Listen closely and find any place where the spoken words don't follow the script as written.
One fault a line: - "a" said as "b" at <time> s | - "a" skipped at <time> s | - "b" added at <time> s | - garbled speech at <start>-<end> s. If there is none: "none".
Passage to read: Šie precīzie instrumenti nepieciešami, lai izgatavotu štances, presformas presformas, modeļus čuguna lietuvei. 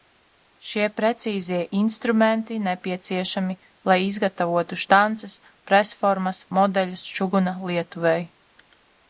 - "presformas" skipped at 6.4 s